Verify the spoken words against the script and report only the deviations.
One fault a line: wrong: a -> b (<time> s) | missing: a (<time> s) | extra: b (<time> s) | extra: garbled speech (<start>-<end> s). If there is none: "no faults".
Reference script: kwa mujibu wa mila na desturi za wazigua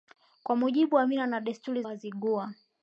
missing: za (1.8 s)